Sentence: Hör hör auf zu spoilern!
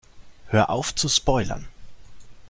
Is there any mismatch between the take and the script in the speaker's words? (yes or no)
yes